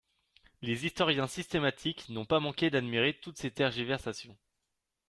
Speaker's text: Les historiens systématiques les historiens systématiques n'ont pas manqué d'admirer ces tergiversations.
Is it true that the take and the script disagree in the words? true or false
true